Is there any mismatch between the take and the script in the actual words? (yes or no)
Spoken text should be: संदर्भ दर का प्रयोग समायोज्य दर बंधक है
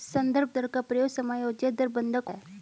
no